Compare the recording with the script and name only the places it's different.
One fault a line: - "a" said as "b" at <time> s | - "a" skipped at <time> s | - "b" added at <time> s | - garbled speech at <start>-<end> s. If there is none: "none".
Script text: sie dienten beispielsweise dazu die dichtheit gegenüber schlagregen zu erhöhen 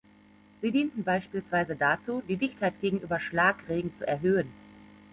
none